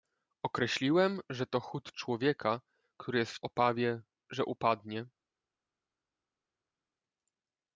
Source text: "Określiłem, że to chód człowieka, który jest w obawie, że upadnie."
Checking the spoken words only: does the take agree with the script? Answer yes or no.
yes